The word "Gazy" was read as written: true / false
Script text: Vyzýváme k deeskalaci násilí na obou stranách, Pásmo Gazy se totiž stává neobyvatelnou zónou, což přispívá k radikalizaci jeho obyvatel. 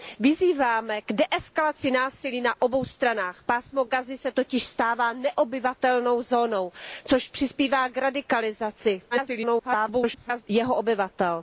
true